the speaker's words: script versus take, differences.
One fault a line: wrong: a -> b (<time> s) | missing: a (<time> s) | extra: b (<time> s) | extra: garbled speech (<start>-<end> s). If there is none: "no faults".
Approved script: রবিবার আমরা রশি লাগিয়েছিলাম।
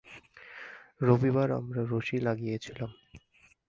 no faults